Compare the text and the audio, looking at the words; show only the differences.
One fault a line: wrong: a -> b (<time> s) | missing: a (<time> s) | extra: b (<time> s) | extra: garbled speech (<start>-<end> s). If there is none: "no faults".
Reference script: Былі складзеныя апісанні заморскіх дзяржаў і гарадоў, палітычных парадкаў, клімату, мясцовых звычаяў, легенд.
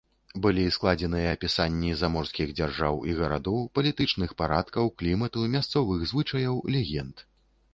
no faults